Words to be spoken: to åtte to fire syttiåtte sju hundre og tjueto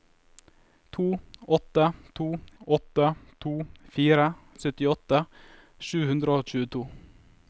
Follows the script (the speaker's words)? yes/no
no